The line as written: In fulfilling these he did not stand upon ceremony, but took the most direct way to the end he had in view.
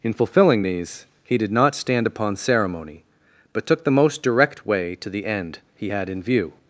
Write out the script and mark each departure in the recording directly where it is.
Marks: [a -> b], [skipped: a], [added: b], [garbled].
In fulfilling these he did not stand upon ceremony, but took the most direct way to the end he had in view.